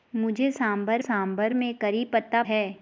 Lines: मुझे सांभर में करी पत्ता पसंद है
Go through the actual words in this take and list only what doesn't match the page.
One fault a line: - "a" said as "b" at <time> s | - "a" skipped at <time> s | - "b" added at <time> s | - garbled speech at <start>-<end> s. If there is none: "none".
- "सांभर" added at 1.0 s
- "पसंद" skipped at 2.4 s